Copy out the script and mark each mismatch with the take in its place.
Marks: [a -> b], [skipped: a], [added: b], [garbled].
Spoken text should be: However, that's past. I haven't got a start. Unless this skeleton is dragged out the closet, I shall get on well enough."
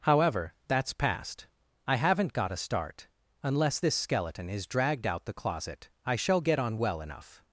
However, that's past. I haven't got a start. Unless this skeleton is dragged out the closet, I shall get on well enough."